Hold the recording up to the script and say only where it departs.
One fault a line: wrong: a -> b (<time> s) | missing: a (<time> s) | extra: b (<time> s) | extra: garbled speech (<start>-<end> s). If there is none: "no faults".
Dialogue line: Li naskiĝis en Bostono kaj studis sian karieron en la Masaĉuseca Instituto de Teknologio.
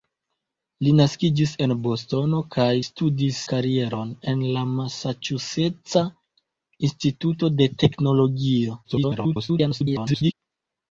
missing: sian (3.4 s)
extra: garbled speech (8.8-10.3 s)